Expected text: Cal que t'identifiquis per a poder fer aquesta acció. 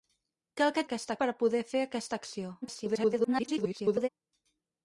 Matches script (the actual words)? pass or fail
fail